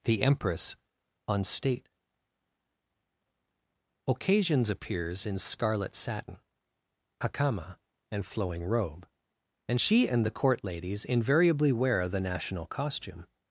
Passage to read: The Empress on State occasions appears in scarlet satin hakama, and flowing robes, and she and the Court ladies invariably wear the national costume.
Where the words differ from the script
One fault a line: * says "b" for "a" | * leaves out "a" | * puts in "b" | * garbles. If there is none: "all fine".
* says "robe" for "robes"